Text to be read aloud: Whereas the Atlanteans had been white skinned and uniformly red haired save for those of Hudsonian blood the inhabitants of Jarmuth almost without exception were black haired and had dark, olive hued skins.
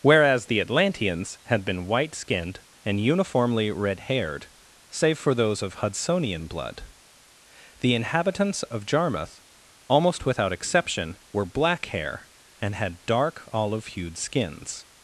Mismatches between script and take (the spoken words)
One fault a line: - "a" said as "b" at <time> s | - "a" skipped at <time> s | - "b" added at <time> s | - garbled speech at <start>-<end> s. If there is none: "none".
- "haired" said as "hair" at 11.9 s